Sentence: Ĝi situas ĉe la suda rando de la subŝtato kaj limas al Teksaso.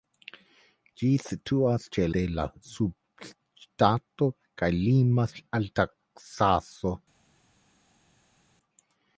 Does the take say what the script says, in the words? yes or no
no